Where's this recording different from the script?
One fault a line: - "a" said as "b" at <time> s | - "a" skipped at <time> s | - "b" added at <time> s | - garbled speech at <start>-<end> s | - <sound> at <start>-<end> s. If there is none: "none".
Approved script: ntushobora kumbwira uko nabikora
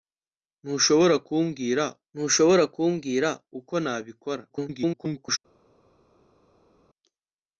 - "ntushobora kumbwira" added at 2.1 s
- garbled speech at 4.5-5.4 s